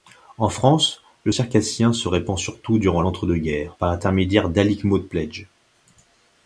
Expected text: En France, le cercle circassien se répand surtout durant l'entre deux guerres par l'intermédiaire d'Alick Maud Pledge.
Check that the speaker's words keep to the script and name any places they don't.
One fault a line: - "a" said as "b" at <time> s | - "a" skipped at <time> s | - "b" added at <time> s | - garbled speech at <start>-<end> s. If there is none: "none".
- "cercle" skipped at 1.3 s